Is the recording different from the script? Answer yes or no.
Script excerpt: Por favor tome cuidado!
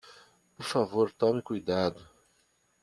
no